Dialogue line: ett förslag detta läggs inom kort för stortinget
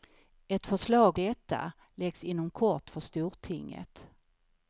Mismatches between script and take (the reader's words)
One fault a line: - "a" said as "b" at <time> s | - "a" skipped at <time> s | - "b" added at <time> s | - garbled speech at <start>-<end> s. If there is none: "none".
none